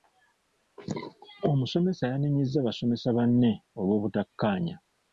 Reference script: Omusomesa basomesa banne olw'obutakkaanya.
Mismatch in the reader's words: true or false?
true